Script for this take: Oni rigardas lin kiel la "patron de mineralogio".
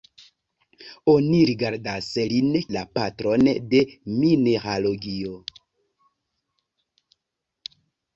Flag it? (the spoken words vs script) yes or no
yes